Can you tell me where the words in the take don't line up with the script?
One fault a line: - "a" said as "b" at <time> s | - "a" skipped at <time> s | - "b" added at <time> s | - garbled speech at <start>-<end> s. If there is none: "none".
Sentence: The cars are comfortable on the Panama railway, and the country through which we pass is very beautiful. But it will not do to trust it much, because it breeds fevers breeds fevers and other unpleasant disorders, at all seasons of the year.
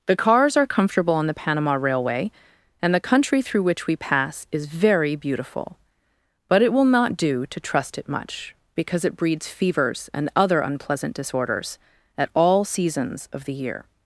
- "breeds fevers" skipped at 10.1 s